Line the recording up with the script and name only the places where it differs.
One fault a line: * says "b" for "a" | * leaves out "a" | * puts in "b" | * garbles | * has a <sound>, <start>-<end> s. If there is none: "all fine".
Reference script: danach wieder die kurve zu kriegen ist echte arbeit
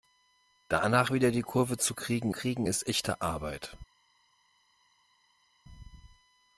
* puts in "kriegen"